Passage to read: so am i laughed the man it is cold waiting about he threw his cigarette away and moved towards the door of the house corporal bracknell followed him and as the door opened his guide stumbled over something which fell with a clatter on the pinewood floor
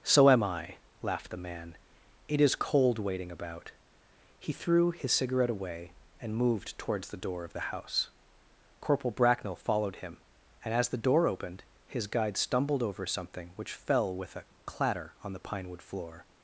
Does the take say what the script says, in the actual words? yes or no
yes